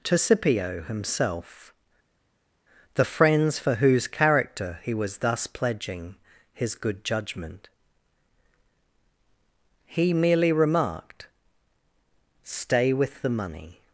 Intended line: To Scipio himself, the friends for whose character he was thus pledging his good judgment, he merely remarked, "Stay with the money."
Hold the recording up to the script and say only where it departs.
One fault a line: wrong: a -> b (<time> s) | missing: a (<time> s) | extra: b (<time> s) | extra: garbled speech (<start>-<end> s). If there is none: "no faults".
no faults